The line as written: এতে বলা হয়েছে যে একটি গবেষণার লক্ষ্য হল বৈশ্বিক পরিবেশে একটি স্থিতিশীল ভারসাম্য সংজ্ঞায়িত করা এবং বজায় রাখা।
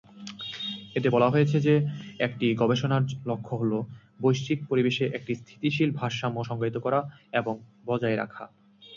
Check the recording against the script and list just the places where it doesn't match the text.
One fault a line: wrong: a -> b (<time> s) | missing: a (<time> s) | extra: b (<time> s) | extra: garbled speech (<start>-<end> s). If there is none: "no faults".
no faults